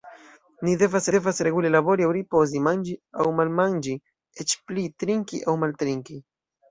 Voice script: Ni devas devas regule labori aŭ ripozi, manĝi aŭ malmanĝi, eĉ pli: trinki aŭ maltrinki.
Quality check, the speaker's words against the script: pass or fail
pass